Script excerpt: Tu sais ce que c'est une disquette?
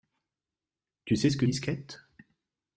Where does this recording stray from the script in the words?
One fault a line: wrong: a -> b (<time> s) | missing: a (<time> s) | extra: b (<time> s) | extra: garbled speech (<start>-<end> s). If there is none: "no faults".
missing: c'est une (1.4 s)